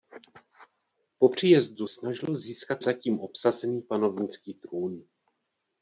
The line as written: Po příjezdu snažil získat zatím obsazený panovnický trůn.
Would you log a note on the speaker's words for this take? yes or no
no